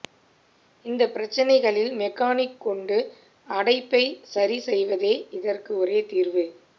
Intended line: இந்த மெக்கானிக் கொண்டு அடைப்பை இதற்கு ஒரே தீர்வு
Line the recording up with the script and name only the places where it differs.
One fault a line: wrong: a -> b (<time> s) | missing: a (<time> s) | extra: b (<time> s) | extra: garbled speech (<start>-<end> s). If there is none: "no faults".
extra: பிரச்சனைகளில் (1.1 s)
extra: சரி செய்வதே (4.3 s)